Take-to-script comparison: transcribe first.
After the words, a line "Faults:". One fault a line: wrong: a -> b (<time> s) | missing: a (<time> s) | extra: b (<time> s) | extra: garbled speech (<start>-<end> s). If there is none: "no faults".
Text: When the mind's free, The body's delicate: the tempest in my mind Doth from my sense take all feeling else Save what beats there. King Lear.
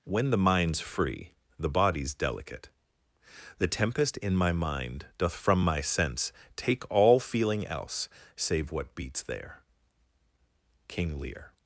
When the mind's free, The body's delicate: the tempest in my mind Doth from my sense take all feeling else Save what beats there. King Lear.
Faults:
no faults